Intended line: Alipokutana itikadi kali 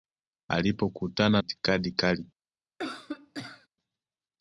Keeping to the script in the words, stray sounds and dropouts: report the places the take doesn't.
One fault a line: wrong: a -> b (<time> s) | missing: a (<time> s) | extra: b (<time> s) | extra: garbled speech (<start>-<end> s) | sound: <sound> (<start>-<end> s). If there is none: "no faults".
sound: cough (2.8-3.7 s)